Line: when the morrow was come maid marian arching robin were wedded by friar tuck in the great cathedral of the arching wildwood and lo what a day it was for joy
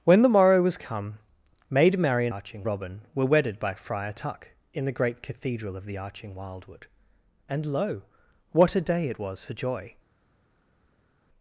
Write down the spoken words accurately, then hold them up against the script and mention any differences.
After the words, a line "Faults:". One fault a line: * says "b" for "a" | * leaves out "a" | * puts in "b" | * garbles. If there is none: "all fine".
when the morrow was come maid marian arching robin were wedded by friar tuck in the great cathedral of the arching wildwood and lo what a day it was for joy
Faults:
all fine